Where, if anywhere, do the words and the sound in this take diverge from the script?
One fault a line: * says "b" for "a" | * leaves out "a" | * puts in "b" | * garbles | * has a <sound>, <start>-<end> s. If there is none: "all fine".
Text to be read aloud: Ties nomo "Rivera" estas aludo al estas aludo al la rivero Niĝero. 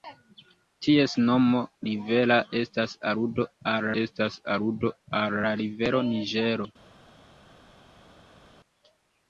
all fine